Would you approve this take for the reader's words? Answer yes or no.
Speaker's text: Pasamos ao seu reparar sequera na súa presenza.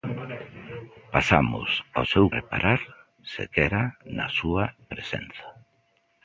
yes